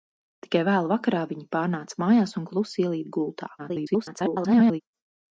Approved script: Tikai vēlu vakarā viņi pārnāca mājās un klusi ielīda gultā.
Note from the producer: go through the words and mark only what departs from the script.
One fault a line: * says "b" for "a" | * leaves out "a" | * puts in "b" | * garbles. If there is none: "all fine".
* garbles